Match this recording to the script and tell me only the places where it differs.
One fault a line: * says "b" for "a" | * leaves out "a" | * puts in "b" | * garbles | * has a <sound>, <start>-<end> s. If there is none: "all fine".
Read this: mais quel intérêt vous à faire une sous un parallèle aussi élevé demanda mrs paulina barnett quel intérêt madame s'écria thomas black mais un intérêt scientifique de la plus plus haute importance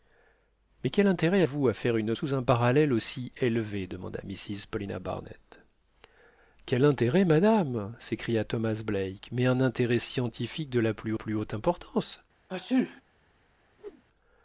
* has a sneeze, 12.5-13.0 s
* has a whoosh, 13.8-14.0 s